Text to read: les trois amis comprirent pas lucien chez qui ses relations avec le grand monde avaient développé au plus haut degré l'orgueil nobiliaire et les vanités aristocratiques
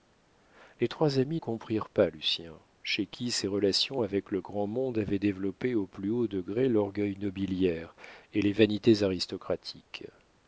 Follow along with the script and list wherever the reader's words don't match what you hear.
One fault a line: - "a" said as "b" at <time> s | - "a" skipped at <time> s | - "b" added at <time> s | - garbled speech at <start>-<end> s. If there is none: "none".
none